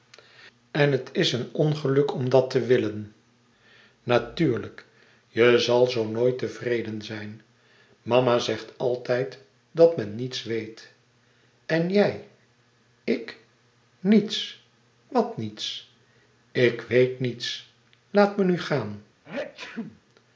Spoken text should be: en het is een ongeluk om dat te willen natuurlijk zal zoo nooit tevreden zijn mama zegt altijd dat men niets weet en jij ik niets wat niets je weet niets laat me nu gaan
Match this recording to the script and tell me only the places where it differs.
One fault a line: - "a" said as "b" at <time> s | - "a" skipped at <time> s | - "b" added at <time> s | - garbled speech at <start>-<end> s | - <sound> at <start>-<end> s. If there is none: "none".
- "je" added at 5.3 s
- "je" said as "ik" at 16.5 s
- sneeze at 19.2-20.0 s